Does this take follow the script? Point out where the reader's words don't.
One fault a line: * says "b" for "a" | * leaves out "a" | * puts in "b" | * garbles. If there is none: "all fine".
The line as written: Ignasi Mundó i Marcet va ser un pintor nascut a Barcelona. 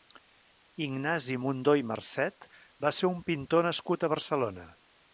all fine